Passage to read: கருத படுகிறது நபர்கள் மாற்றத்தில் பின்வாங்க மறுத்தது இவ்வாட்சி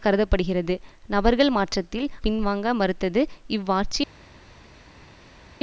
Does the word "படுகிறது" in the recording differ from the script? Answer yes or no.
no